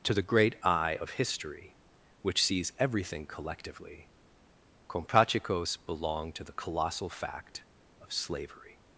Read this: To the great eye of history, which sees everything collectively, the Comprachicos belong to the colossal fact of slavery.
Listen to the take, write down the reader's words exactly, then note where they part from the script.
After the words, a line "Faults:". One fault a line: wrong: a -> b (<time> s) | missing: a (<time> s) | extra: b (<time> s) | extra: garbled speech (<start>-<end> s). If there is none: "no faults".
To the great eye of history, which sees everything collectively, Comprachicos belong to the colossal fact of slavery.
Faults:
missing: the (4.1 s)